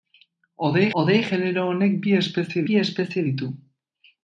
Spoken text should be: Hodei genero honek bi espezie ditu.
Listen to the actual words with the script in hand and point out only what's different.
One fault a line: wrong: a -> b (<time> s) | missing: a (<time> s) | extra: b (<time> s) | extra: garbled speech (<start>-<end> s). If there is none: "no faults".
extra: hodei (1.0 s)
extra: bi espezie (2.7 s)